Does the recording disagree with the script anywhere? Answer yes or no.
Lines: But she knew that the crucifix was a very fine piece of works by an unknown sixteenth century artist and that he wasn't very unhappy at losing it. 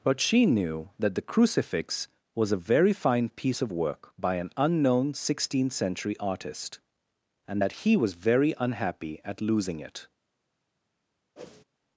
yes